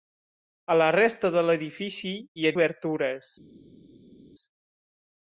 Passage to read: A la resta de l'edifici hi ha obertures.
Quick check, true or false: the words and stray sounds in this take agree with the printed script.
true